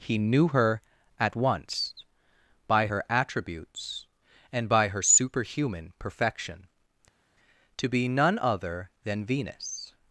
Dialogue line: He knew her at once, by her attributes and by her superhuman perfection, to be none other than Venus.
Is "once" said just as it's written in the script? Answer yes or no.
yes